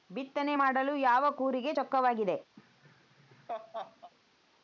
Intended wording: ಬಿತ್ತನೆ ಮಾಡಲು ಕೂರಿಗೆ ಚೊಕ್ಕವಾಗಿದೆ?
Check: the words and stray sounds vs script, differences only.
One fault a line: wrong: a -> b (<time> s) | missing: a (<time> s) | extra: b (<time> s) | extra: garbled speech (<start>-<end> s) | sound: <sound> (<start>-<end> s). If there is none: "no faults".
extra: ಯಾವ (1.0 s)
sound: laugh (2.6-4.1 s)